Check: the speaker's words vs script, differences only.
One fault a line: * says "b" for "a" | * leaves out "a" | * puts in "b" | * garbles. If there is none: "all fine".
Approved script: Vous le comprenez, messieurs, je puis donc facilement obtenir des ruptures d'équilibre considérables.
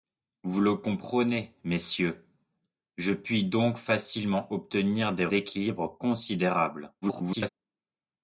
* leaves out "ruptures"
* garbles